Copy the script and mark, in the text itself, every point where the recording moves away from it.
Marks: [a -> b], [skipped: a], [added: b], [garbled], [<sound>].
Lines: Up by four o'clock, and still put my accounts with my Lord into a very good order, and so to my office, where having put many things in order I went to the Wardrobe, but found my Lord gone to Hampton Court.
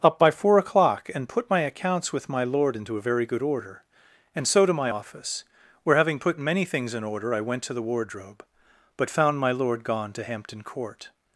Up by four o'clock, and [skipped: still] put my accounts with my Lord into a very good order, and so to my office, where having put many things in order I went to the Wardrobe, but found my Lord gone to Hampton Court.